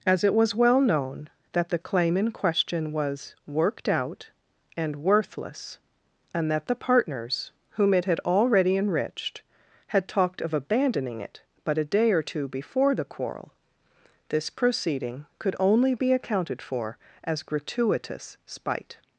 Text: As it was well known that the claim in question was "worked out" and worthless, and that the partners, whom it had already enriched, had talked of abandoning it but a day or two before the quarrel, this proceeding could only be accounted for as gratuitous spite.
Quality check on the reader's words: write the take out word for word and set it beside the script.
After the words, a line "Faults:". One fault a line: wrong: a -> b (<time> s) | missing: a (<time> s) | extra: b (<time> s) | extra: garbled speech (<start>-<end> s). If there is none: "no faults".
As it was well known that the claim in question was "worked out" and worthless, and that the partners, whom it had already enriched, had talked of abandoning it but a day or two before the quarrel, this proceeding could only be accounted for as gratuitous spite.
Faults:
no faults